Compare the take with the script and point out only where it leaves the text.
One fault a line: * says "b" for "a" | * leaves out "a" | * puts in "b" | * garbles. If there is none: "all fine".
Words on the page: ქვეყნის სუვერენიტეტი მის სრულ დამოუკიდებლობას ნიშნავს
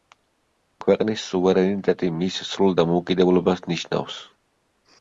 all fine